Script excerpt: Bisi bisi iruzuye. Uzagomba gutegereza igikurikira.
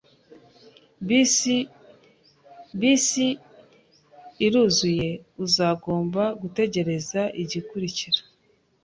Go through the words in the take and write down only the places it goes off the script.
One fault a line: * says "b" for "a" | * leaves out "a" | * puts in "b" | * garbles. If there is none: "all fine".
all fine